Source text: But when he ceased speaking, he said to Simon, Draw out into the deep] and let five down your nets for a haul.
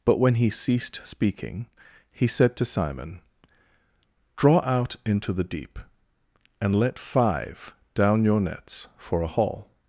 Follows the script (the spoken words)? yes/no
yes